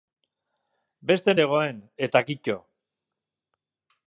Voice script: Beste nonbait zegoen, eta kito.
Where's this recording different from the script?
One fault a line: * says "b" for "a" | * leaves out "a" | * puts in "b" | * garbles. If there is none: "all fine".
* leaves out "nonbait"